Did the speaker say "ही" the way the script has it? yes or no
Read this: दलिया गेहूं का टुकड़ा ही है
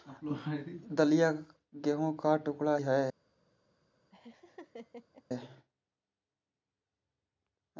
no